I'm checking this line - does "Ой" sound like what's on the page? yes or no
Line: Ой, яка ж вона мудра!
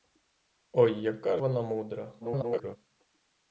yes